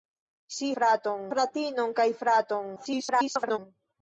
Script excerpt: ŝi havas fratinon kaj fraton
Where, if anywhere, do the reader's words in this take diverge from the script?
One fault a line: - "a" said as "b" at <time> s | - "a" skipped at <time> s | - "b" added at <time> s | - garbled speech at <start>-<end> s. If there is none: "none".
- "havas" said as "fraton" at 0.8 s
- garbled speech at 2.8-3.6 s